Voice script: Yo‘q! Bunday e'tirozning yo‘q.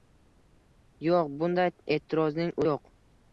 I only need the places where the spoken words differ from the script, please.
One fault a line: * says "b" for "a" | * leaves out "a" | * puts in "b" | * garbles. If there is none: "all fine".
all fine